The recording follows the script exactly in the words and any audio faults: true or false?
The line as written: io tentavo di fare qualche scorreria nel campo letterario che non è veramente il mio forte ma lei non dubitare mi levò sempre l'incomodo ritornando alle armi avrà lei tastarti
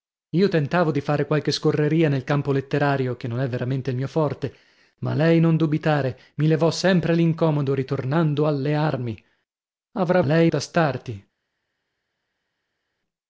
true